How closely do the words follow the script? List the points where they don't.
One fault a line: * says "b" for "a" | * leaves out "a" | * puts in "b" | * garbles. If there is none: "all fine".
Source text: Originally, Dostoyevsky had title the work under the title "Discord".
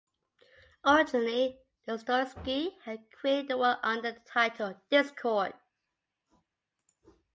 * says "created" for "title"